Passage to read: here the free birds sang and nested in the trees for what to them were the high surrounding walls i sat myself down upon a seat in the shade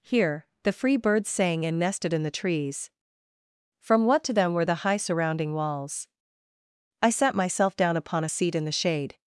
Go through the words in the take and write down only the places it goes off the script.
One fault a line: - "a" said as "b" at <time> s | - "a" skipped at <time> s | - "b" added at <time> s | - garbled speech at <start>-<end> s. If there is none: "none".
- "for" said as "from" at 3.8 s